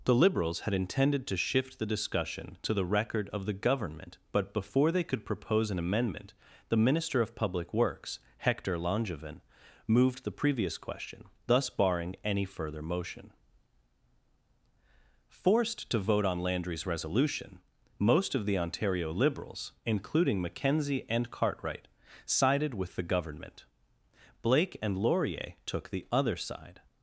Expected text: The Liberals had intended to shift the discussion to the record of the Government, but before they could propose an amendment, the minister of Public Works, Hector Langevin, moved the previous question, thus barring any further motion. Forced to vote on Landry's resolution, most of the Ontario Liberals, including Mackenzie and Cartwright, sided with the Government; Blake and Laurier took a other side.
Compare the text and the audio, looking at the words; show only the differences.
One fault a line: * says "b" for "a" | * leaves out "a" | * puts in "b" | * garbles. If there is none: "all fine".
* says "the" for "a"